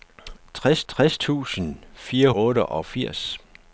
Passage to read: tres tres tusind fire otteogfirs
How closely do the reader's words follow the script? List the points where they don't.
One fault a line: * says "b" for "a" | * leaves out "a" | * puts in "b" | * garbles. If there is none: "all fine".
all fine